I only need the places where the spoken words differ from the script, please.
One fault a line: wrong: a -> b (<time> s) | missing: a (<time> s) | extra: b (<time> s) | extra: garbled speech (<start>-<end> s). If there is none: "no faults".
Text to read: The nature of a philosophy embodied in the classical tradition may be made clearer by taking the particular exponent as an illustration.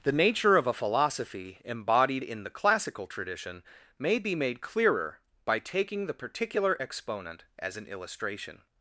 no faults